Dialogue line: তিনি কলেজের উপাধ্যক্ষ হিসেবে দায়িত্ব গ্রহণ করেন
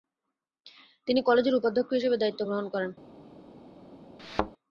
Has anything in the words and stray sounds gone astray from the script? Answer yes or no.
yes